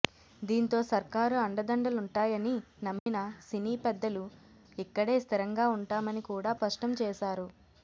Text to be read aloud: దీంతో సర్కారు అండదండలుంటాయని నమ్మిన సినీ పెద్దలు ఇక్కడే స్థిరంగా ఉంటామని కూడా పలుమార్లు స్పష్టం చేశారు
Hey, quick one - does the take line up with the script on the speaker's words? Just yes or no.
no